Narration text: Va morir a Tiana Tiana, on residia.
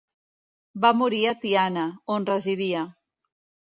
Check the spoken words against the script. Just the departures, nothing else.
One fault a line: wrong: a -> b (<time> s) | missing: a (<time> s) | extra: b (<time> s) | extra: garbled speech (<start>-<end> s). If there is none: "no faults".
missing: Tiana (1.9 s)